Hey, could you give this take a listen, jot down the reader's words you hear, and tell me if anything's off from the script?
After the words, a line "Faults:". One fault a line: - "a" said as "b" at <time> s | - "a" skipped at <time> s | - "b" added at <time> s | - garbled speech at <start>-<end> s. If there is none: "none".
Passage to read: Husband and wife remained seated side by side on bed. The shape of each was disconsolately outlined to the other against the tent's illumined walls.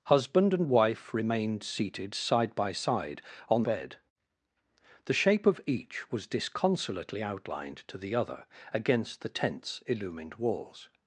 Husband and wife remained seated side by side on bed. The shape of each was disconsolately outlined to the other against the tent's illumined walls.
Faults:
none